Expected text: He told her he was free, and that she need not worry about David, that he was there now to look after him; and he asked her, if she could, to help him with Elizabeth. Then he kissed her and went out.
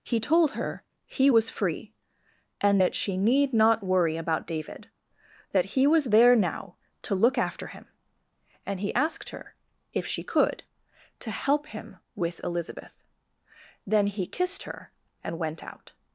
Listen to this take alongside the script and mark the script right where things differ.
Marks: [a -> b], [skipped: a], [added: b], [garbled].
He told her he was free, and that she need not worry about David, that he was there now to look after him; and he asked her, if she could, to help him with Elizabeth. Then he kissed her and went out.